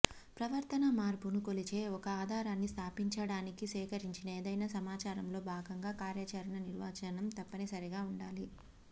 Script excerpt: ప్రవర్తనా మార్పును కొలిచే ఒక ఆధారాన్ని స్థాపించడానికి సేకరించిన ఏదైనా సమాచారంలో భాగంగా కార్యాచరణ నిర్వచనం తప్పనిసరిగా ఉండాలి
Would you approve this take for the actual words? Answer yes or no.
yes